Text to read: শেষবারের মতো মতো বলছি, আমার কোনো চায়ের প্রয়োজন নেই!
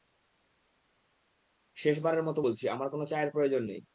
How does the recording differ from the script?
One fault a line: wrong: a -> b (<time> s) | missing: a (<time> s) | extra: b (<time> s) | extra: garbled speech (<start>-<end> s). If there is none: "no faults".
missing: মতো (2.4 s)